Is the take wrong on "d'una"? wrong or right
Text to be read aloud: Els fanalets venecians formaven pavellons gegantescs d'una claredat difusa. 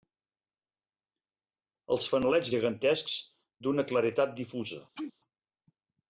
right